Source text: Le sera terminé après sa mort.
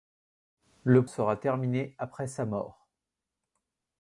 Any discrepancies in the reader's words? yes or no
no